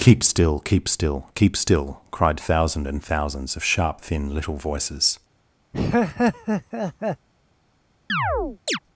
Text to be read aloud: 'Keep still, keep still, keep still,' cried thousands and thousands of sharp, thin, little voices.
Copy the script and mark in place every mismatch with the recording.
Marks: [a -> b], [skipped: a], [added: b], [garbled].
'Keep still, keep still, keep still,' cried [thousands -> thousand] and thousands of sharp, thin, little voices.